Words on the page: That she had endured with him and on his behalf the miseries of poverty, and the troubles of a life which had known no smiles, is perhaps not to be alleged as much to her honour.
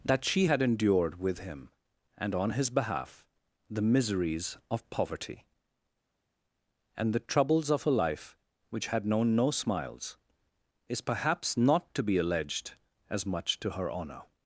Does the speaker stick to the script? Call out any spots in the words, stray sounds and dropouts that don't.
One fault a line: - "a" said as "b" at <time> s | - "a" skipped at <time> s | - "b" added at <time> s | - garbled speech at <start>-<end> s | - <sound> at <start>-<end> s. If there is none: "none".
none